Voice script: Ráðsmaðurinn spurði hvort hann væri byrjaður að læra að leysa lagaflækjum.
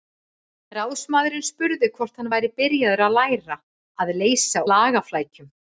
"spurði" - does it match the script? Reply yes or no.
yes